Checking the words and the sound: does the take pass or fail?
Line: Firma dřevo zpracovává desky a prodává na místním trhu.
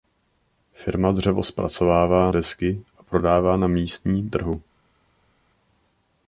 pass